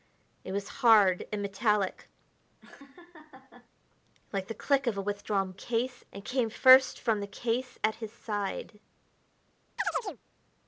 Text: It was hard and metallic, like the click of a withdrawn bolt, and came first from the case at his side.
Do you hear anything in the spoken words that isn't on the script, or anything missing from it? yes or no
yes